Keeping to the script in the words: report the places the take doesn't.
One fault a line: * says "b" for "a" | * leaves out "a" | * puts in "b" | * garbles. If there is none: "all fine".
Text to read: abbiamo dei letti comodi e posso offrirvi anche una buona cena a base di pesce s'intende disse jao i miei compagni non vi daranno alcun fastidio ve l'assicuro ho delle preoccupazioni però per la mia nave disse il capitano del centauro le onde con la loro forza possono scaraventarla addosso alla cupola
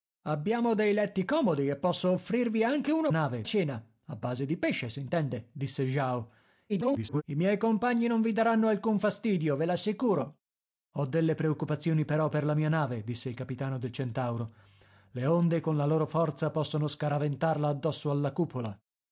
* says "nave" for "buona"
* garbles